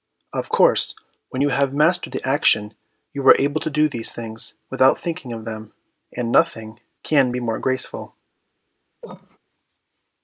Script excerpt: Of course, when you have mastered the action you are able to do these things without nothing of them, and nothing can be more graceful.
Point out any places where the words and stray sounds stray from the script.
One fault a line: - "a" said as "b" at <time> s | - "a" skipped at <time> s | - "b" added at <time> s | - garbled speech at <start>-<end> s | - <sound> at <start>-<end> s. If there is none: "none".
- "nothing" said as "thinking" at 4.9 s
- cough at 9.0-9.4 s